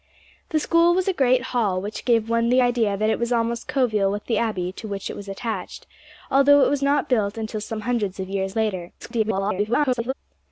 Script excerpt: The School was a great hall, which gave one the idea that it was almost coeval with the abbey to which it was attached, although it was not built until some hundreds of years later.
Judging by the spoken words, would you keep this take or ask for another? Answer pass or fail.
fail